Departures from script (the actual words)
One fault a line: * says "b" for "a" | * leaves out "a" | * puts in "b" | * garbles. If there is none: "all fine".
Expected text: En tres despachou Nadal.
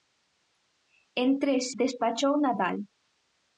all fine